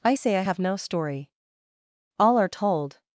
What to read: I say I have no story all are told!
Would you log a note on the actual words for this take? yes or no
no